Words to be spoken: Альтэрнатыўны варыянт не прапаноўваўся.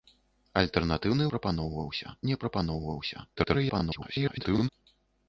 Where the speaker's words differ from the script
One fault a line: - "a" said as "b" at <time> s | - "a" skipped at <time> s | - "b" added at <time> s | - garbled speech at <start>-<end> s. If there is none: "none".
- "варыянт" said as "прапаноўваўся" at 1.4 s
- garbled speech at 3.4-4.7 s